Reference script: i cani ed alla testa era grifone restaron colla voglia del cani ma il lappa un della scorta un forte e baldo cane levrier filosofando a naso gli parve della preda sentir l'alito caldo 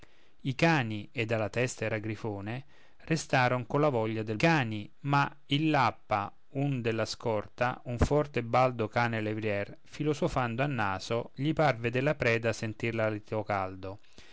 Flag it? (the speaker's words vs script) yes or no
no